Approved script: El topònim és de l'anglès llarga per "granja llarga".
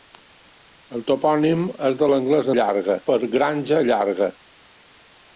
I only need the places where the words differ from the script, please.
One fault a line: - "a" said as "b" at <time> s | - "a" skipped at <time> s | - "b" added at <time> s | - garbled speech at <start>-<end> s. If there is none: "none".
none